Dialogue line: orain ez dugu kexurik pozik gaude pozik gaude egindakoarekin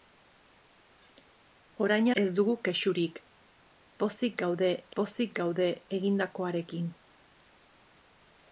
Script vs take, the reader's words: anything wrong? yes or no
no